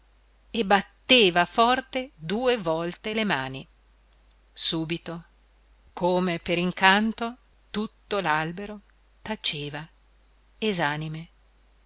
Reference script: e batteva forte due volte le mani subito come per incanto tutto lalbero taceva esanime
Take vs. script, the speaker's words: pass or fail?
pass